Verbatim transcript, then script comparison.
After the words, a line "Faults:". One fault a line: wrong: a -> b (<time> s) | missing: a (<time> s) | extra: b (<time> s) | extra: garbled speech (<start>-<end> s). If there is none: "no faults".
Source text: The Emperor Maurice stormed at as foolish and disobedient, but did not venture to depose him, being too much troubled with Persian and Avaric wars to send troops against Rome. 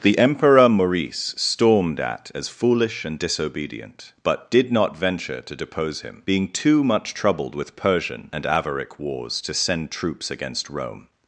The Emperor Maurice stormed at as foolish and disobedient, but did not venture to depose him, being too much troubled with Persian and Avaric wars to send troops against Rome.
Faults:
no faults